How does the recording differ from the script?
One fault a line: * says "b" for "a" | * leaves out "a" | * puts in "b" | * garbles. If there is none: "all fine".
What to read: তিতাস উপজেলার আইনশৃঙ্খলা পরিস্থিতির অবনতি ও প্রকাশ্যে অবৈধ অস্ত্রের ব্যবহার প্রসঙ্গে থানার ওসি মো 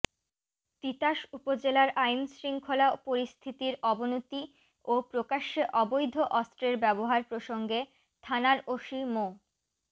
all fine